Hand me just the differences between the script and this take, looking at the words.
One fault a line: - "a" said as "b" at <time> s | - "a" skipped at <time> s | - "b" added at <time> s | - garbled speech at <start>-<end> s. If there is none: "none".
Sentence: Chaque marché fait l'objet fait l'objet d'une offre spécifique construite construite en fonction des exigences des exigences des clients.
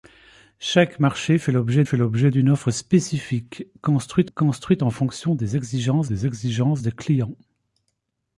none